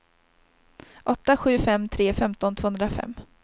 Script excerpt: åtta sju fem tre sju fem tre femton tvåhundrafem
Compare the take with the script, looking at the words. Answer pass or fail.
fail